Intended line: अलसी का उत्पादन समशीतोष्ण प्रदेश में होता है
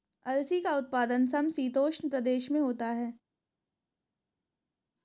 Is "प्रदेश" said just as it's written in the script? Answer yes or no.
yes